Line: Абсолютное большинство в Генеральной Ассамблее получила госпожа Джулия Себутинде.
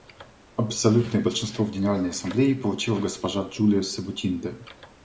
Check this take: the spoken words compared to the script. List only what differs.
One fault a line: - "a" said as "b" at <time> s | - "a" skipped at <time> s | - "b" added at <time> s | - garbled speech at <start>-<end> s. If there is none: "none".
none